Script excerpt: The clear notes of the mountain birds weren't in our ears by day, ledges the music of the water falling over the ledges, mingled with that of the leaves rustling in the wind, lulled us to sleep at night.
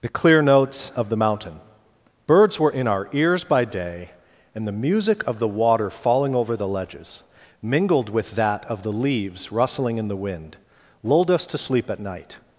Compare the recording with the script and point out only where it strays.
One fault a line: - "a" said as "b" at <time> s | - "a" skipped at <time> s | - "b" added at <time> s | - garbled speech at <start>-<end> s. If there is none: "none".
- "weren't" said as "were" at 2.6 s
- "ledges" said as "and" at 4.5 s